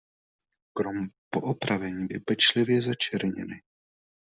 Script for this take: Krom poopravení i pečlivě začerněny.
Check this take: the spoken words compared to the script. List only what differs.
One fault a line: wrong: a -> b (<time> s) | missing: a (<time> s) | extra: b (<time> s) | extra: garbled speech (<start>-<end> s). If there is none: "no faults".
no faults